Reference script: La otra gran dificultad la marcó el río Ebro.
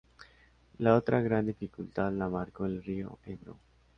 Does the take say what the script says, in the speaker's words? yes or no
yes